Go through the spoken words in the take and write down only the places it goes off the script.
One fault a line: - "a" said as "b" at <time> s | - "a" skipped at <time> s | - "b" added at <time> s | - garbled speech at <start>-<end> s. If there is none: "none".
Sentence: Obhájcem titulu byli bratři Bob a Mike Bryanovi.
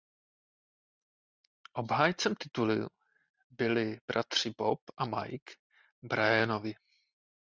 none